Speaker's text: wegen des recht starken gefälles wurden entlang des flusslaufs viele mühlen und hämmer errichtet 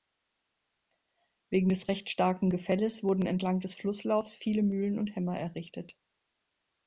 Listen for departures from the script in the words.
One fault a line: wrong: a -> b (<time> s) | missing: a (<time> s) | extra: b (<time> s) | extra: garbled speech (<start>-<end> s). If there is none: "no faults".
no faults